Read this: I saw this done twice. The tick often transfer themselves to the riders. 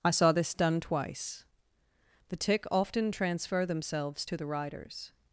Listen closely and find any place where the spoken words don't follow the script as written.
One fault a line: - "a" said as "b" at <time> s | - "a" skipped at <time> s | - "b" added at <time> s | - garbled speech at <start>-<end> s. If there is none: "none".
none